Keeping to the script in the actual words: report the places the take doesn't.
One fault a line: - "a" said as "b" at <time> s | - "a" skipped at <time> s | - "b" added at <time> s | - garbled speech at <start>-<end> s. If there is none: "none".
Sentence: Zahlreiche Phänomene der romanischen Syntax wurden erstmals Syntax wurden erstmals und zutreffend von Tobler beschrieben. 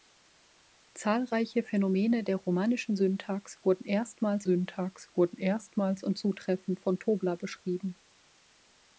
none